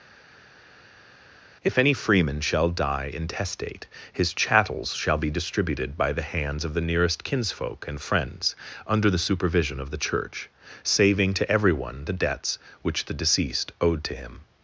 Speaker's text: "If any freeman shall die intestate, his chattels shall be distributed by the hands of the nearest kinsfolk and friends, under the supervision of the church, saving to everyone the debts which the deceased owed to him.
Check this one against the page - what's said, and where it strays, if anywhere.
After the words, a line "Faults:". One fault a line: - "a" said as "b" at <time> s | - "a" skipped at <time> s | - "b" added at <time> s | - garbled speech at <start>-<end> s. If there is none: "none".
"If any freeman shall die intestate, his chattels shall be distributed by the hands of the nearest kinsfolk and friends, under the supervision of the church, saving to everyone the debts which the deceased owed to him.
Faults:
none